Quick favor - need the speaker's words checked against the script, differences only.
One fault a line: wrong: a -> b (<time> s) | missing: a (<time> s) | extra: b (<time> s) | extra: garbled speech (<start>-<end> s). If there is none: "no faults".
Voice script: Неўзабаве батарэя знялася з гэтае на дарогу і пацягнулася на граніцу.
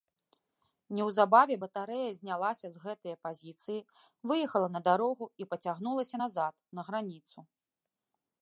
extra: пазіцыі выехала (3.3 s)
extra: назад (6.2 s)